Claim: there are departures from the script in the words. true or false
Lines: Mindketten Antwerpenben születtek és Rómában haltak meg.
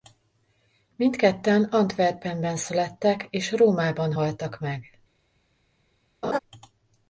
false